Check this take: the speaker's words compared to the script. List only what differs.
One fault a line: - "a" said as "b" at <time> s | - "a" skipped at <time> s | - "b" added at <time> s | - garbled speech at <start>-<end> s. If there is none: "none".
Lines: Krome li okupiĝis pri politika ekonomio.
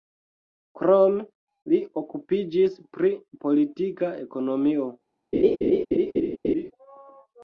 none